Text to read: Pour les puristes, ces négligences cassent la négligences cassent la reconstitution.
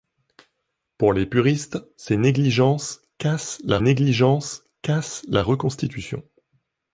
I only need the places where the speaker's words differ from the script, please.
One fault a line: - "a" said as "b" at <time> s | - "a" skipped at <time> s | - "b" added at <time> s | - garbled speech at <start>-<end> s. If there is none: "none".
none